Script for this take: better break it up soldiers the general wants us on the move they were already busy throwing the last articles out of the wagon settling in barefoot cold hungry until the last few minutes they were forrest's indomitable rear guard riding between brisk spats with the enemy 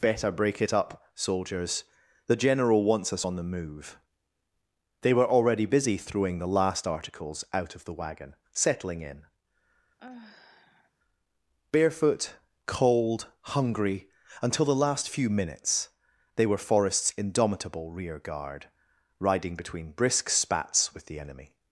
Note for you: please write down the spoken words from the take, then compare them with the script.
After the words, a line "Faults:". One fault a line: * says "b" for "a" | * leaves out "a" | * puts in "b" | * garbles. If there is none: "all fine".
better break it up soldiers the general wants us on the move they were already busy throwing the last articles out of the wagon settling in barefoot cold hungry until the last few minutes they were forrest's indomitable rear guard riding between brisk spats with the enemy
Faults:
all fine